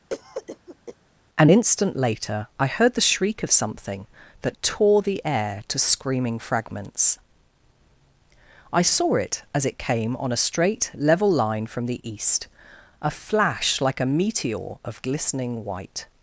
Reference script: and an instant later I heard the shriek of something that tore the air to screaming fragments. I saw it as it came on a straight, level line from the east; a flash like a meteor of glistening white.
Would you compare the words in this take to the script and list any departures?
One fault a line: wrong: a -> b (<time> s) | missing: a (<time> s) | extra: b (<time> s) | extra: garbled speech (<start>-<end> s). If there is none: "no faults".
missing: an (1.5 s)